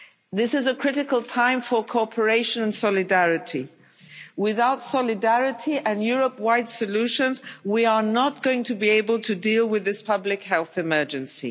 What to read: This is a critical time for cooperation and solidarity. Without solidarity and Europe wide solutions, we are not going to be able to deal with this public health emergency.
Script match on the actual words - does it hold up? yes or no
yes